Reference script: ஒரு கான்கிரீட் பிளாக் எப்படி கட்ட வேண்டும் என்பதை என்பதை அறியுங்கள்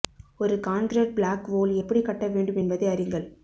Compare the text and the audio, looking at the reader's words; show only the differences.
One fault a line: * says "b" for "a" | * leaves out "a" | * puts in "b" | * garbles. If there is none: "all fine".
* puts in "வோல்"
* leaves out "என்பதை"